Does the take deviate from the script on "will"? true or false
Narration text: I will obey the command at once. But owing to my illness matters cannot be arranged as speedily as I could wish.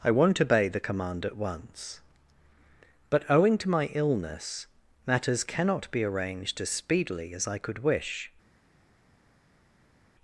true